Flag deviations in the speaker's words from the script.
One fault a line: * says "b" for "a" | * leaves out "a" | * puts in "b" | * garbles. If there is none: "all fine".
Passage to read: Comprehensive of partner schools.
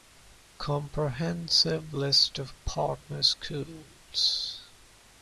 * puts in "list"